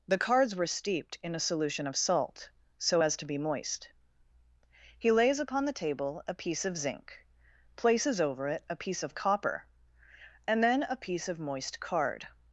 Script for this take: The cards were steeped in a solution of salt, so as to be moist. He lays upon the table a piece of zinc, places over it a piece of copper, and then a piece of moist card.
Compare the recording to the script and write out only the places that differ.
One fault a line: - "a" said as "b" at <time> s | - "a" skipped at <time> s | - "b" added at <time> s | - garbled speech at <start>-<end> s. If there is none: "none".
none